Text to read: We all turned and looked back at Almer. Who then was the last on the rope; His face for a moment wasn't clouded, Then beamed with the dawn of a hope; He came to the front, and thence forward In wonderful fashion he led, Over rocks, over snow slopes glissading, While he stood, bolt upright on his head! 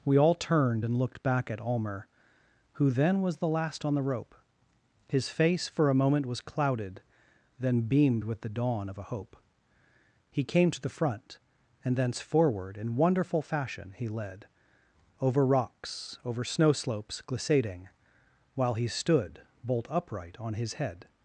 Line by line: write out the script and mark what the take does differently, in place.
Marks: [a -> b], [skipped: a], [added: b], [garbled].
We all turned and looked back at Almer. Who then was the last on the rope; His face for a moment [wasn't -> was] clouded, Then beamed with the dawn of a hope; He came to the front, and thence forward In wonderful fashion he led, Over rocks, over snow slopes glissading, While he stood, bolt upright on his head!